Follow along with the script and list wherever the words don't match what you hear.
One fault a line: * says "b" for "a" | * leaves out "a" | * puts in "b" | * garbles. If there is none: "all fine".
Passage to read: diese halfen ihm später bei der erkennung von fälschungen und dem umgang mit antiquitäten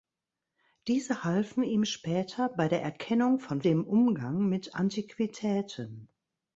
* leaves out "fälschungen und"